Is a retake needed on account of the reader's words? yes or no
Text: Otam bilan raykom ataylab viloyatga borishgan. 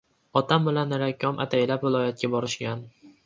no